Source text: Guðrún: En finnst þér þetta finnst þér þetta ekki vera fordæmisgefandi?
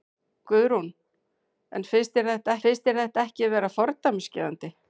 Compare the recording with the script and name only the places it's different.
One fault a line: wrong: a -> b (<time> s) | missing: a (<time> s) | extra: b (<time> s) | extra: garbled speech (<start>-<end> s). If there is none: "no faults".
no faults